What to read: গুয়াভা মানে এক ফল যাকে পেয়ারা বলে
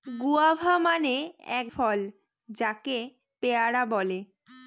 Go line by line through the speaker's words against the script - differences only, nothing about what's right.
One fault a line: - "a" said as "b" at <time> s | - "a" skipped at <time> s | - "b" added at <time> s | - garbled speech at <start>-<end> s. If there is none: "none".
none